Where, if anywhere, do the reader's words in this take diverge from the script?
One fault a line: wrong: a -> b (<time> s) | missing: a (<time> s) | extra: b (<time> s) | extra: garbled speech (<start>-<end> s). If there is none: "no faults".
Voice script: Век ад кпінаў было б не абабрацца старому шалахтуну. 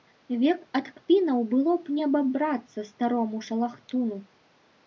no faults